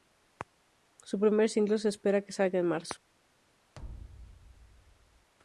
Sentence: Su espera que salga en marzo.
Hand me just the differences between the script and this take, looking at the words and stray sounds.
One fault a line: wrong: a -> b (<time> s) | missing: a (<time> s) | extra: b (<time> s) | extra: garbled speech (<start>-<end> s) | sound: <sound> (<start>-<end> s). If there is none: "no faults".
extra: primer single se (1.2 s)
sound: thud (3.7-5.3 s)